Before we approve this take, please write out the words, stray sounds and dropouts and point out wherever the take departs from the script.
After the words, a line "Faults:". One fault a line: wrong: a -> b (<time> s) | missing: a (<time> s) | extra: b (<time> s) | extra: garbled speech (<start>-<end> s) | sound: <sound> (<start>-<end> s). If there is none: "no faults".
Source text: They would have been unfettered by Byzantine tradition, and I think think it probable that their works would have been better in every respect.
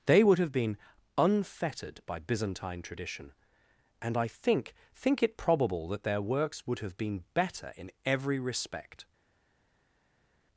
They would have been unfettered by Byzantine tradition, and I think think it probable that their works would have been better in every respect.
Faults:
no faults